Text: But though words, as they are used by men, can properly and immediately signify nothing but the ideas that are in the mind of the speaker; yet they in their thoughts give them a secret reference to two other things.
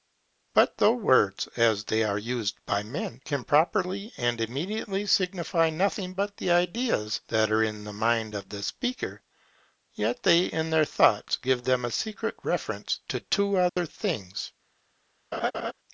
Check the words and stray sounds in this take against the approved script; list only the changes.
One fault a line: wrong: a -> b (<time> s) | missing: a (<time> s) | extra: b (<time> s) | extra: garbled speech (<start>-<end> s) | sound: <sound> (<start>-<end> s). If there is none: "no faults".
sound: dropout (13.7-13.8 s)
sound: laugh (15.3-15.7 s)